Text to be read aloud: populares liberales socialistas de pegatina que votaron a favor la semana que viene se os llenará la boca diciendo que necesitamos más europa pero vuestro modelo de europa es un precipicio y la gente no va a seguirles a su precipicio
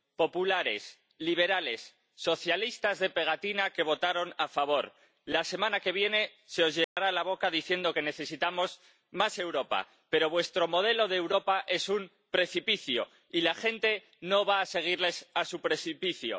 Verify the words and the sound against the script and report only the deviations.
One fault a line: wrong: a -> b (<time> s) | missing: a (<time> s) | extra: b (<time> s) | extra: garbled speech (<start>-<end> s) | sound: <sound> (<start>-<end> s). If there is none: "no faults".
sound: dropout (6.8-7.0 s)